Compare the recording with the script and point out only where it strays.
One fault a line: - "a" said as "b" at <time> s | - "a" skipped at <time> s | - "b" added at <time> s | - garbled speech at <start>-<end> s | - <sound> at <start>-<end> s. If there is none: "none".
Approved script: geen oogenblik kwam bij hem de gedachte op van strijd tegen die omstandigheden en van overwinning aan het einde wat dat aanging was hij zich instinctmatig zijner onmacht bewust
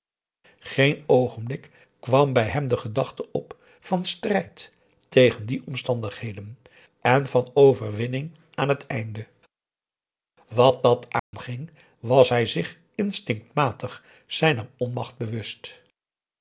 - dropout at 11.2-11.3 s